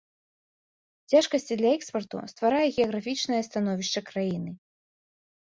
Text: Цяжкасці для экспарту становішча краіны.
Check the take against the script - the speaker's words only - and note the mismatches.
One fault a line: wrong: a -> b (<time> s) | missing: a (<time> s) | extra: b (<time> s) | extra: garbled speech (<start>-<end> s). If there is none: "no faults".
extra: стварае геаграфічнае (2.3 s)